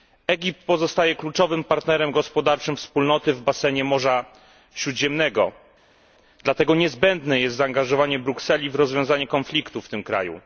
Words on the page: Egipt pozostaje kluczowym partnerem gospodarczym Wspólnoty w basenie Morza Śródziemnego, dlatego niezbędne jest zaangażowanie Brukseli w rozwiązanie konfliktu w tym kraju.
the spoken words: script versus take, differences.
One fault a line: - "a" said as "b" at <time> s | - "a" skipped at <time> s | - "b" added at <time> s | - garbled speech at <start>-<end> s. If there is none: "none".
none